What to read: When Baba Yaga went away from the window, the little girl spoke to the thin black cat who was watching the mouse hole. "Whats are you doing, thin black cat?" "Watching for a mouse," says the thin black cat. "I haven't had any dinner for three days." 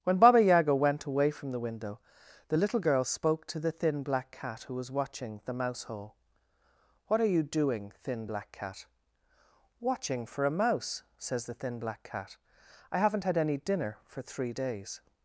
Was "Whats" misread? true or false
true